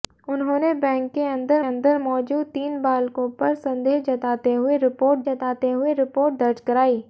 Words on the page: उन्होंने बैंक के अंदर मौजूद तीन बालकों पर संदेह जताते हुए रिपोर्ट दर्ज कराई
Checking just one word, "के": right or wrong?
right